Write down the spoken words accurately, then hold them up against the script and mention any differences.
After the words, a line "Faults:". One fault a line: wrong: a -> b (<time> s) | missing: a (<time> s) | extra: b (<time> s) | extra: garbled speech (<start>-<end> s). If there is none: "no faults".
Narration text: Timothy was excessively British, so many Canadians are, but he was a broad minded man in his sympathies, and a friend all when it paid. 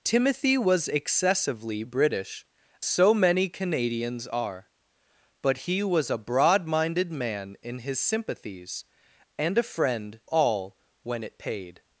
Timothy was excessively British, so many Canadians are, but he was a broad minded man in his sympathies, and a friend all when it paid.
Faults:
no faults